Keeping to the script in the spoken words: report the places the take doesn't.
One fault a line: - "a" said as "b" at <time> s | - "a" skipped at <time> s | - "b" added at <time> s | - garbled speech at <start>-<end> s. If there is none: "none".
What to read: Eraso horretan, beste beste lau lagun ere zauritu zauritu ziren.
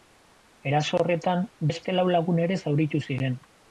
- "beste" skipped at 2.0 s
- "zauritu" skipped at 3.0 s